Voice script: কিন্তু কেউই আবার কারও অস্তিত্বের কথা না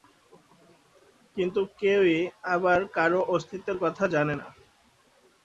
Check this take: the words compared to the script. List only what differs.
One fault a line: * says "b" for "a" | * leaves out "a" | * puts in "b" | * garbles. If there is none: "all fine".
* puts in "জানে"